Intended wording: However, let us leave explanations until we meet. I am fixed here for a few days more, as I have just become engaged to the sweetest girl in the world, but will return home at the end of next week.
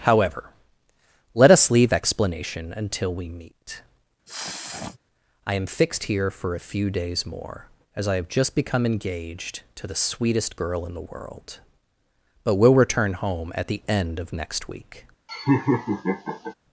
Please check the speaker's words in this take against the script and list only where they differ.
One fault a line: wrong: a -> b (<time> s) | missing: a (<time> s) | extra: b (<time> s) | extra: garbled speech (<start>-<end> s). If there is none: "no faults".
wrong: explanations -> explanation (1.9 s)